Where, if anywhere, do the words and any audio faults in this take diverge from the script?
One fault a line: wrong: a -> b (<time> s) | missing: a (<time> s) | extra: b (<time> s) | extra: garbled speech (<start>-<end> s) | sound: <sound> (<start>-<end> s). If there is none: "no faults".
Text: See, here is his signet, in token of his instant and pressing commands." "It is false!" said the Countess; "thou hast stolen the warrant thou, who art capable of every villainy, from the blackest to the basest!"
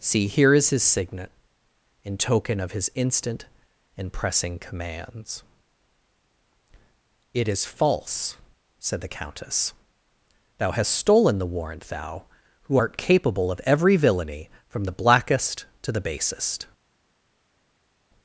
no faults